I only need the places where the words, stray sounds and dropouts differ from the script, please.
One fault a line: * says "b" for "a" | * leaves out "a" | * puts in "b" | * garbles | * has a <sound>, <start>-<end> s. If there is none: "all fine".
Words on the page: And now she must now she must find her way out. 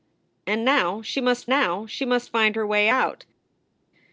all fine